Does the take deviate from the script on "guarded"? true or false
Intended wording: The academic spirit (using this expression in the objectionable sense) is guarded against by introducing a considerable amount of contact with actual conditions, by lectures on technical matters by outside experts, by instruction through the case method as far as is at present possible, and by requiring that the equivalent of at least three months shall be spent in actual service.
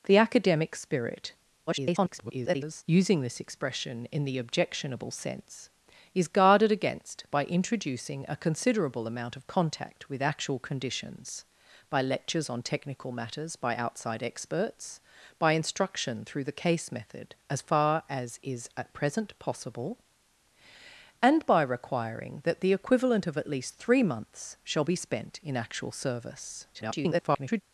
false